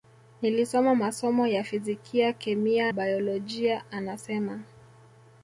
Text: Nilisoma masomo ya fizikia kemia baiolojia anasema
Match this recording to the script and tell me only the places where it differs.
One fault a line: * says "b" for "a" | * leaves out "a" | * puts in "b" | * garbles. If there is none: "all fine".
all fine